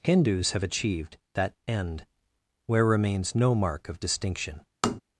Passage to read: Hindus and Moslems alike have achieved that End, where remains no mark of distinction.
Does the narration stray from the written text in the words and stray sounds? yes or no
yes